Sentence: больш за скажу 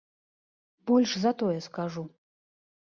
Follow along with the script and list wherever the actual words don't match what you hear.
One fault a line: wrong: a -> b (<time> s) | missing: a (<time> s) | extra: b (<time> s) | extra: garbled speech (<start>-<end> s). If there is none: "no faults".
extra: тое (1.4 s)